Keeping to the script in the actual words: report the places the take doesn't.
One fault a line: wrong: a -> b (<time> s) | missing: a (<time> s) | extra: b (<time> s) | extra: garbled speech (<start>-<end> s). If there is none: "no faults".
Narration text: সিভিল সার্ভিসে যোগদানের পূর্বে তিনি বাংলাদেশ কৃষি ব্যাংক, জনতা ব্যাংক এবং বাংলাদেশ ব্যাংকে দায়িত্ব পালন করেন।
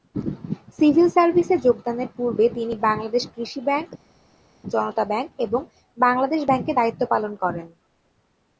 no faults